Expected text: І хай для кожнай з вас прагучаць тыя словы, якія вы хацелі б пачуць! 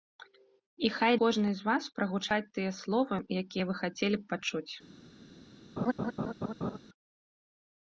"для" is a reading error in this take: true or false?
true